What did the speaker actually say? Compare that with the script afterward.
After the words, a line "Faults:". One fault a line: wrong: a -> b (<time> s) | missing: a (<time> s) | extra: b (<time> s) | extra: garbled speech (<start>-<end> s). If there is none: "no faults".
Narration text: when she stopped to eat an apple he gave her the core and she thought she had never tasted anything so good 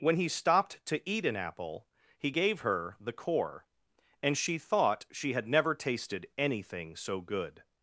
when he stopped to eat an apple he gave her the core and she thought she had never tasted anything so good
Faults:
wrong: she -> he (0.1 s)